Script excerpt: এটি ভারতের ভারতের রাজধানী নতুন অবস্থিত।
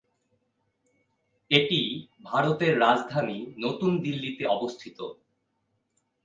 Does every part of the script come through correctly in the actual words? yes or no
no